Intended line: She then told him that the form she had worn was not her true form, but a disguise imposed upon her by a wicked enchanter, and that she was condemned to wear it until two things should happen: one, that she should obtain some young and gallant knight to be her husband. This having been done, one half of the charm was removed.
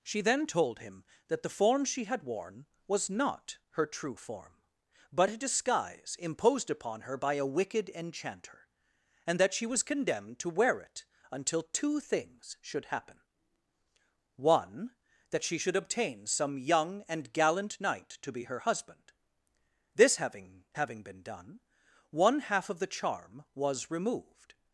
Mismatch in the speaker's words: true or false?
true